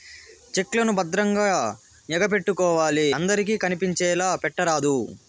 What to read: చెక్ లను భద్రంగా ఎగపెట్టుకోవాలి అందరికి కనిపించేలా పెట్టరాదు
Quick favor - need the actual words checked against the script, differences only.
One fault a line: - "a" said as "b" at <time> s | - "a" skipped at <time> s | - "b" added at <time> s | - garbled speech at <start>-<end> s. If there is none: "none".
none